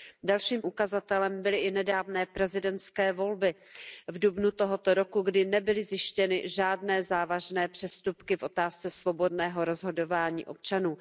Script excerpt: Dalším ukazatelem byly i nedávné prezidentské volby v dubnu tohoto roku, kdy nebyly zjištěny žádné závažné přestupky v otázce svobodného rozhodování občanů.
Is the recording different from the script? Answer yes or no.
no